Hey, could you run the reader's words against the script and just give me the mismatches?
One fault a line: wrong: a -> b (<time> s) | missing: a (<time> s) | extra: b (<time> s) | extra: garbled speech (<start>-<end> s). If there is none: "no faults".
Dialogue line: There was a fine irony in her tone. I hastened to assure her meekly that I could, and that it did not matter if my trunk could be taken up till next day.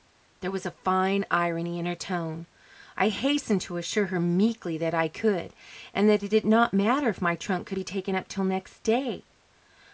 no faults